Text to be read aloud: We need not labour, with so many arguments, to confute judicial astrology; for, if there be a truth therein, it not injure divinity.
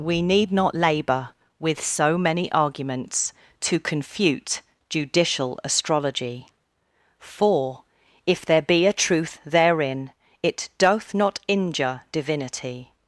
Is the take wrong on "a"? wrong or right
right